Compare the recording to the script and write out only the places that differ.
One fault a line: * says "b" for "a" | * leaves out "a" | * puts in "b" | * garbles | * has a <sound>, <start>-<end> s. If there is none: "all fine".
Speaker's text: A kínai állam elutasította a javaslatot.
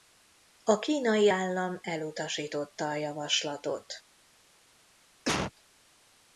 * has a cough, 5.3-5.5 s